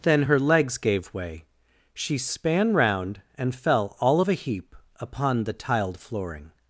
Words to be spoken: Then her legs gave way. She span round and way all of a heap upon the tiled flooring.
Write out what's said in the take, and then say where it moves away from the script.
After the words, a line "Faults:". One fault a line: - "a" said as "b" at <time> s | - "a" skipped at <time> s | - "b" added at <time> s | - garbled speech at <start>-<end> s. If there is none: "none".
Then her legs gave way. She span round and fell all of a heap upon the tiled flooring.
Faults:
- "way" said as "fell" at 3.5 s